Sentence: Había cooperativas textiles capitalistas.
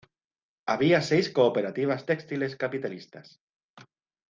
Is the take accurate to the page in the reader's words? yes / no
no